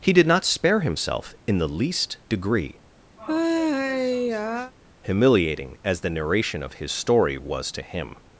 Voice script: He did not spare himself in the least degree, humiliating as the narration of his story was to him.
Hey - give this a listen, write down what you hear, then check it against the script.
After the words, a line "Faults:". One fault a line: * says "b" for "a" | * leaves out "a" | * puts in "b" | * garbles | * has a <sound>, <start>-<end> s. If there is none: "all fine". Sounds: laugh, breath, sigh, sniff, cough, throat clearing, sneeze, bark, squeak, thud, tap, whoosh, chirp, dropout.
He did not spare himself in the least degree, humiliating as the narration of his story was to him.
Faults:
* has a sigh, 3.2-4.7 s